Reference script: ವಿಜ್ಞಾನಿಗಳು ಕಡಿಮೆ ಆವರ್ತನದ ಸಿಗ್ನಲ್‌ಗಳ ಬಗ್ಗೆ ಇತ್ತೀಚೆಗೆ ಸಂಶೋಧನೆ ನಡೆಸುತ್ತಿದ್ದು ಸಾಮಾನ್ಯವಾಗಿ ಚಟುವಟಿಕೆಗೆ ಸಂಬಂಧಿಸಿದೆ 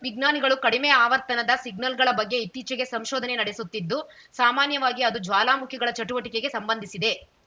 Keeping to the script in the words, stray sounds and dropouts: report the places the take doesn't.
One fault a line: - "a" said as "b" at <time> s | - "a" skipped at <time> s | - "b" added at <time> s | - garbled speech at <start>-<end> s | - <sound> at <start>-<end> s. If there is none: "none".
- "ಅದು ಜ್ವಾಲಾಮುಖಿಗಳ" added at 5.0 s